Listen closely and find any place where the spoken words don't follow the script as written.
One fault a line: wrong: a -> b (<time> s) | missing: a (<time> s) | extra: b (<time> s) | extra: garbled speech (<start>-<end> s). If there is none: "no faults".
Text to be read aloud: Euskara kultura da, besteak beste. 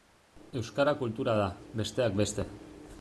no faults